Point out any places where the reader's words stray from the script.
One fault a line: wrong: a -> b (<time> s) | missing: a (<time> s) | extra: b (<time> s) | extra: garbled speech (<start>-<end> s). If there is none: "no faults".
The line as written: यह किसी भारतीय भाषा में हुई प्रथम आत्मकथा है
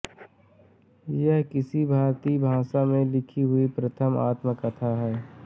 extra: लिखी (3.0 s)